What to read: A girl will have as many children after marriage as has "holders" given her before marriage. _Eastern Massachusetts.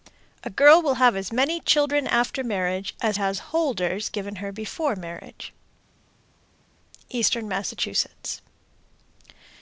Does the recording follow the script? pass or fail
pass